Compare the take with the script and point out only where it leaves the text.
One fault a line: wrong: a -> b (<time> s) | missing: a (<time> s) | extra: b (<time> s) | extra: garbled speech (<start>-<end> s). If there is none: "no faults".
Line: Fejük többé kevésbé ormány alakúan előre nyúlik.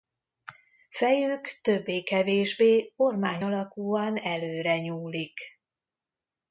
no faults